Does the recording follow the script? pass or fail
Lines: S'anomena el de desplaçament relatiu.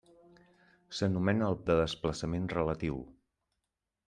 pass